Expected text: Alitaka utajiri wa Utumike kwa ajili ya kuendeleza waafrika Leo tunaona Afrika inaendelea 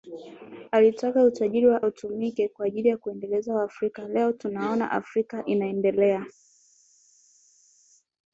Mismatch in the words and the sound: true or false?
false